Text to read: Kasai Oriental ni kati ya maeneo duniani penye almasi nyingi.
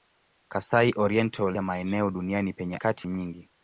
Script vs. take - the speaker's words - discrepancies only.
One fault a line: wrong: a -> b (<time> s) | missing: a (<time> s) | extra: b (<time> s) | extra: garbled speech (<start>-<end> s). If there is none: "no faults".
missing: ni kati (1.6 s)
wrong: almasi -> kati (2.8 s)